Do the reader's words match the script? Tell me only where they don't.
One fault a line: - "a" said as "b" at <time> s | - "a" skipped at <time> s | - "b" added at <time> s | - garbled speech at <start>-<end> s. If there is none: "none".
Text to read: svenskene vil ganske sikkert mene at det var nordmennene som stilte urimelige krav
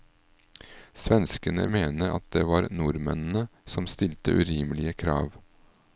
- "vil ganske sikkert" skipped at 1.6 s